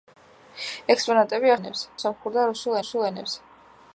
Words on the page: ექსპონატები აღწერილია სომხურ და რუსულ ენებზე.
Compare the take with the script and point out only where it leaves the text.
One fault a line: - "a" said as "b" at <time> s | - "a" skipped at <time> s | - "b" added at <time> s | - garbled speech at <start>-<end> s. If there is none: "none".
- "აღწერილია" said as "ენებზე" at 1.6 s
- "რუსულ" added at 2.8 s